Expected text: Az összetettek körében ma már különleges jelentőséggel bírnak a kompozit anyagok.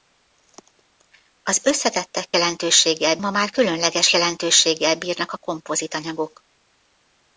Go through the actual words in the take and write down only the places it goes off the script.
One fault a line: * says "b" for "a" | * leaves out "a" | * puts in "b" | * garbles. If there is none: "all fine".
* says "jelentőséggel" for "körében"